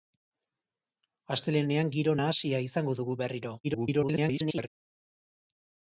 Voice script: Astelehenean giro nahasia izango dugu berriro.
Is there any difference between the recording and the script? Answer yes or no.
yes